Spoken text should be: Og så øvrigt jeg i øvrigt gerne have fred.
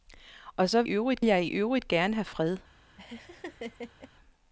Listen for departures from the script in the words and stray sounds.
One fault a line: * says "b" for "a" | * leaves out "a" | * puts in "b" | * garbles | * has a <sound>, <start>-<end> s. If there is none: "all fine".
* has a laugh, 3.0-4.1 s